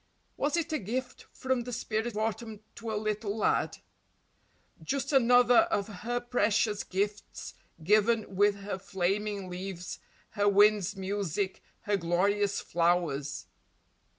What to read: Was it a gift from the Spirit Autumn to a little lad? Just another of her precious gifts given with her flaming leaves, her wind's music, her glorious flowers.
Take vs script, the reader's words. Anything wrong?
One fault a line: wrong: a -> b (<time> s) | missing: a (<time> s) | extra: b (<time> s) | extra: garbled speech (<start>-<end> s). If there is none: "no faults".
no faults